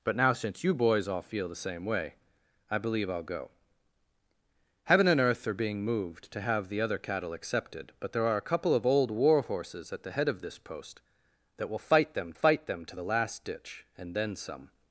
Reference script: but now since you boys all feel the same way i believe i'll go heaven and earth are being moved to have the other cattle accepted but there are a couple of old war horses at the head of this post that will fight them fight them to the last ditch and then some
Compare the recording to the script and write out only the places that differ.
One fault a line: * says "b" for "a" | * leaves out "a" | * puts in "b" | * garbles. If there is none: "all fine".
all fine